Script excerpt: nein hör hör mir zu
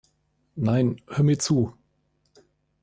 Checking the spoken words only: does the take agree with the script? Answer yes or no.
no